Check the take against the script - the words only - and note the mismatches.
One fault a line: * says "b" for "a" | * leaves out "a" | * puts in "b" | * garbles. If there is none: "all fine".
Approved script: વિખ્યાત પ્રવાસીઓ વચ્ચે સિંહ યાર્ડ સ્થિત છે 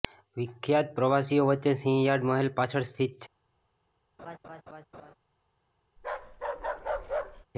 * puts in "મહેલ પાછળ"